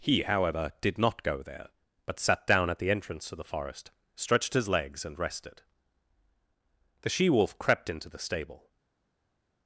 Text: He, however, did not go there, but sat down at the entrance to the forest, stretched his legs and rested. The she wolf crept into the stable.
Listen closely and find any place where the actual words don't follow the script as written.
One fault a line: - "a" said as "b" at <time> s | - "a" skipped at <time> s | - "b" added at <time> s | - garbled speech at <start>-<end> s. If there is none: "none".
none